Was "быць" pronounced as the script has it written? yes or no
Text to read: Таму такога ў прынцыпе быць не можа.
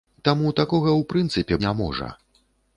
no